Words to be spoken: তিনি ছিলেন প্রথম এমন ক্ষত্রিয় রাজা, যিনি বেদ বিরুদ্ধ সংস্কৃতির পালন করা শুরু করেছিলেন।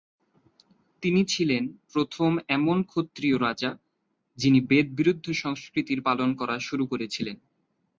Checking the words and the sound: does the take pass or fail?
pass